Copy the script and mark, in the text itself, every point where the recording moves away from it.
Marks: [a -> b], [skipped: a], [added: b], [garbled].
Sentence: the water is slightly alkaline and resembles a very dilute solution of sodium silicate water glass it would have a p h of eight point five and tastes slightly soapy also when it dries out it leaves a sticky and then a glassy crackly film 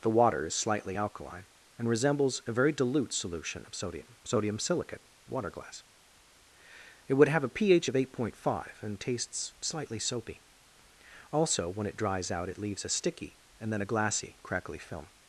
the water is slightly alkaline and resembles a very dilute solution of sodium [added: sodium] silicate water glass it would have a p h of eight point five and tastes slightly soapy also when it dries out it leaves a sticky and then a glassy crackly film